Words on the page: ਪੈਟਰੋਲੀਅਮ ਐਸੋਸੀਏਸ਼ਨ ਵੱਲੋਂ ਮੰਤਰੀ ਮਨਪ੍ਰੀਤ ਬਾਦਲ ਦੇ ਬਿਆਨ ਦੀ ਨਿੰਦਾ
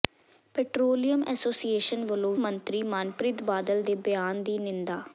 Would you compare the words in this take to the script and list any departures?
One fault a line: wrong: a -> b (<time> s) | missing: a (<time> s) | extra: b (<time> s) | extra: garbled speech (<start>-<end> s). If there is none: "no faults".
no faults